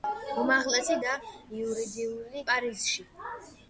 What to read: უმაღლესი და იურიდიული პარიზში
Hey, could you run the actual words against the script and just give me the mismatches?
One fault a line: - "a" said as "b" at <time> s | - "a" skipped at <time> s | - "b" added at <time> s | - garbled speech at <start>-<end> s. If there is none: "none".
none